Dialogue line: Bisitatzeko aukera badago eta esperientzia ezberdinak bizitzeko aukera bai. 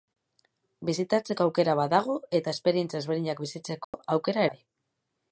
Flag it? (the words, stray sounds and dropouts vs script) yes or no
yes